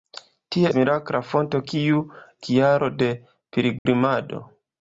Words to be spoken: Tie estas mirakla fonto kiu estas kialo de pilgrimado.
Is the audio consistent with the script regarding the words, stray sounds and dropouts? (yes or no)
no